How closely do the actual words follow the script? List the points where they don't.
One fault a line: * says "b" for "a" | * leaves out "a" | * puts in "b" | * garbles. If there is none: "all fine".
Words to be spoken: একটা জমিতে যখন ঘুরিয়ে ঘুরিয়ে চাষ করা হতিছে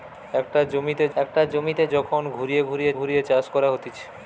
* puts in "একটা জমিতে"
* puts in "ঘুরিয়ে"